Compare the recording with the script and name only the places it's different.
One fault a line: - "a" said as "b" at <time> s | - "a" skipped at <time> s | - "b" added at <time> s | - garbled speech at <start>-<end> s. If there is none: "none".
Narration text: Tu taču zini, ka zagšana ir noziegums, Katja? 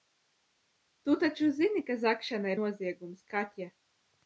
- "ir" skipped at 2.5 s